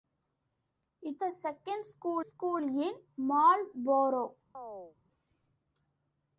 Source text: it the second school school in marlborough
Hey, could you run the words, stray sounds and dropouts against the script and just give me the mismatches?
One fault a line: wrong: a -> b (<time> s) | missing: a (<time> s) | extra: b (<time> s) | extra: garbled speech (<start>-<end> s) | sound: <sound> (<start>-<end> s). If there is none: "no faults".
sound: chirp (4.5-5.0 s)